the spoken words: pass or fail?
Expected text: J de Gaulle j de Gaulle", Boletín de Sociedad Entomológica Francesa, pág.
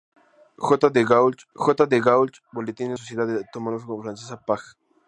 pass